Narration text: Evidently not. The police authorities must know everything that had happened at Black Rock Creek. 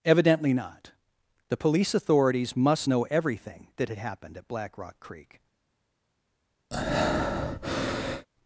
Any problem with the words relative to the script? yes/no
no